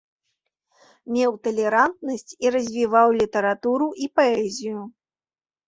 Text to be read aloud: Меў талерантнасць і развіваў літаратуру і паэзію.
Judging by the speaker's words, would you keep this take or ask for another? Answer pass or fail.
pass